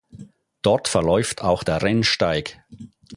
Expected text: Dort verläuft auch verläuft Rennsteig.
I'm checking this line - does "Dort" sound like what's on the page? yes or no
yes